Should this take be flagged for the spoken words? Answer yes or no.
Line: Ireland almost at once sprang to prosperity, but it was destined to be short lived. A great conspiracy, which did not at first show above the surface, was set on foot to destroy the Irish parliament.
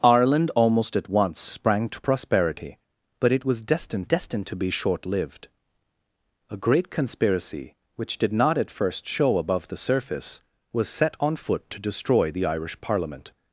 yes